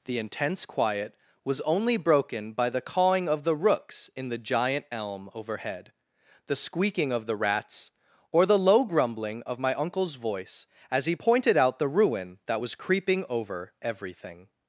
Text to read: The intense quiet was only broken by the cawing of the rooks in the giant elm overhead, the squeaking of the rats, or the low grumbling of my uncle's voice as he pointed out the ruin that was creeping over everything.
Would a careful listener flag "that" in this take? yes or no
no